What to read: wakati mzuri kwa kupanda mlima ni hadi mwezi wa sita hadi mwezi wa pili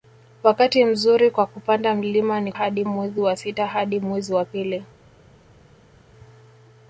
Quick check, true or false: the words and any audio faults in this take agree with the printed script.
true